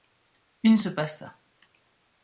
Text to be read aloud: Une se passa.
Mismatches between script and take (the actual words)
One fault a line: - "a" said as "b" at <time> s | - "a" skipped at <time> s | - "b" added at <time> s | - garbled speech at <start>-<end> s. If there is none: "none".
none